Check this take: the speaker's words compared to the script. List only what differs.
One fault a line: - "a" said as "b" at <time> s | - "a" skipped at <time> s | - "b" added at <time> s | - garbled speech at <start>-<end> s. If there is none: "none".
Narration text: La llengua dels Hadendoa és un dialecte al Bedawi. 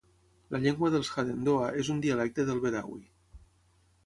- "al" said as "del" at 2.5 s